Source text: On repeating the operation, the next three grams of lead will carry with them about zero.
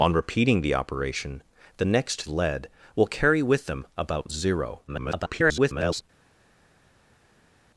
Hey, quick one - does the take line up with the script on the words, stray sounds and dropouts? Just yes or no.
no